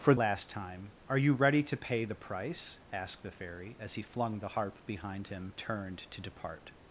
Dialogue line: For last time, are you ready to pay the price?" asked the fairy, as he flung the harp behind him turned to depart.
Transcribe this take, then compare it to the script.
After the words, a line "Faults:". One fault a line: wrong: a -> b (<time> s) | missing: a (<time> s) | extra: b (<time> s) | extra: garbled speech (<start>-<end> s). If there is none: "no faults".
For last time, are you ready to pay the price?" asked the fairy, as he flung the harp behind him turned to depart.
Faults:
no faults